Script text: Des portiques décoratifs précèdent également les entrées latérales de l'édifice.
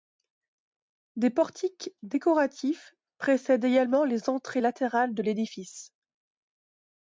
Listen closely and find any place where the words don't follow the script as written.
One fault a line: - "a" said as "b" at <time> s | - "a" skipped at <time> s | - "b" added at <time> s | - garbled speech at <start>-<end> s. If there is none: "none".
none